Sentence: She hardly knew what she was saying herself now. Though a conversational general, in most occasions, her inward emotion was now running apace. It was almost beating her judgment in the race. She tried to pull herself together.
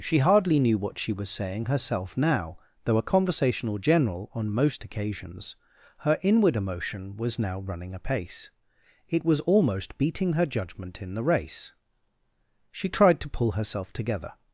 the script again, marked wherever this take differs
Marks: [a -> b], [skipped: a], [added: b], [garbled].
She hardly knew what she was saying herself now. Though a conversational general, [in -> on] most occasions, her inward emotion was now running apace. It was almost beating her judgment in the race. She tried to pull herself together.